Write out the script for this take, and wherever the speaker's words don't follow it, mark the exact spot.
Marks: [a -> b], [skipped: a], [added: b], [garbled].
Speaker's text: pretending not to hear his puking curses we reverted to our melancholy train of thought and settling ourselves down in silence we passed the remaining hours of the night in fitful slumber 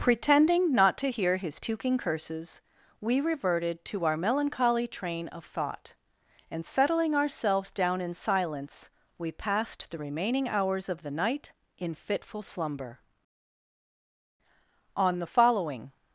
pretending not to hear his puking curses we reverted to our melancholy train of thought and settling ourselves down in silence we passed the remaining hours of the night in fitful slumber [added: on the following]